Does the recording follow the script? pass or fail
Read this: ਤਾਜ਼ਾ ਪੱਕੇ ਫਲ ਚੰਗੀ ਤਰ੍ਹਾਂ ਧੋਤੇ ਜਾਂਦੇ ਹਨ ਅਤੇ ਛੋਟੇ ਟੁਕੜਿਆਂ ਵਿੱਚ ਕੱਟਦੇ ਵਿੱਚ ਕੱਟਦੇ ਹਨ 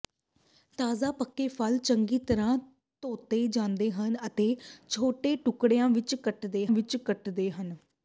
pass